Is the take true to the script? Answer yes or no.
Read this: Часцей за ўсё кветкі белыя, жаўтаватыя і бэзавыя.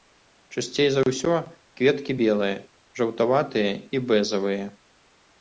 yes